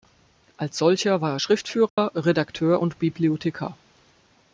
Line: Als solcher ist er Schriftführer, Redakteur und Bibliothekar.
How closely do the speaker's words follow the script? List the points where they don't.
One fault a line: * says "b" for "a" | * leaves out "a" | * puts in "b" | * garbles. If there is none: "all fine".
* says "war" for "ist"